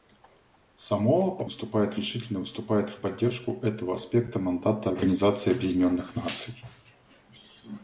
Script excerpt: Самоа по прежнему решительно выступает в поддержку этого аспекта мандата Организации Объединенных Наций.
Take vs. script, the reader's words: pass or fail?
fail